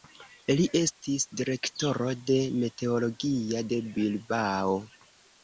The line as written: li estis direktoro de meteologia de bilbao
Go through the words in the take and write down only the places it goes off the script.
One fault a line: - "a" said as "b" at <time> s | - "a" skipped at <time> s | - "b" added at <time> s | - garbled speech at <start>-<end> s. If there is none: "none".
none